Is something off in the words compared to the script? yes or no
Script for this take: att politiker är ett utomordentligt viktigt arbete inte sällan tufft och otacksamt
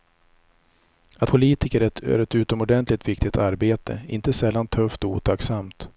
no